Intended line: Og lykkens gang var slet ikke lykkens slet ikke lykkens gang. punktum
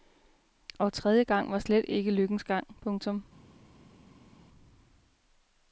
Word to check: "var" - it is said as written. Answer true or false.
true